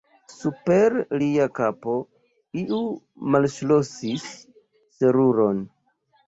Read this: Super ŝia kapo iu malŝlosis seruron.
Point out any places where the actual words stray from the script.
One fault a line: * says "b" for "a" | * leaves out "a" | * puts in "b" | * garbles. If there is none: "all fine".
* says "lia" for "ŝia"